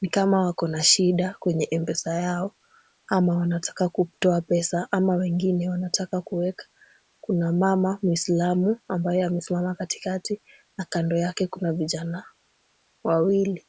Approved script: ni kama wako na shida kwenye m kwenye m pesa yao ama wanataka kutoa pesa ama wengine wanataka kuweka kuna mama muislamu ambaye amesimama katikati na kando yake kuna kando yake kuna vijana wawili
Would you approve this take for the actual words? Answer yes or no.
no